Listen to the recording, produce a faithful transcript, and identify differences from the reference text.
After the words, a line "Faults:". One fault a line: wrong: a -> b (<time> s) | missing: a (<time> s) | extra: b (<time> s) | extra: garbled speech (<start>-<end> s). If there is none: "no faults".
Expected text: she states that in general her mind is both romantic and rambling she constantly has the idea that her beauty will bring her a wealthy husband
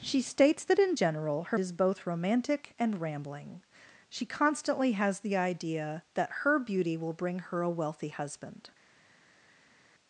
she states that in general her is both romantic and rambling she constantly has the idea that her beauty will bring her a wealthy husband
Faults:
missing: mind (1.6 s)